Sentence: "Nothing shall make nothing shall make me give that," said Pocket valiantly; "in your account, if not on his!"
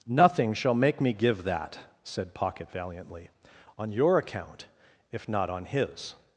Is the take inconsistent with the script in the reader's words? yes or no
yes